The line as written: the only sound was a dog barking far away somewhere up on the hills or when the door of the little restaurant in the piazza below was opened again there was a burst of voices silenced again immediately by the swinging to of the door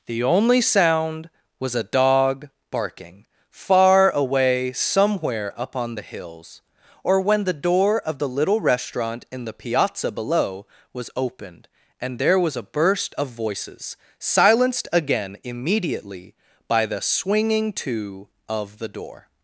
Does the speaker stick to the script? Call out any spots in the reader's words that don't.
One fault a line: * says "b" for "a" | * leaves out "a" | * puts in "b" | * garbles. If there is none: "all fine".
* says "and" for "again"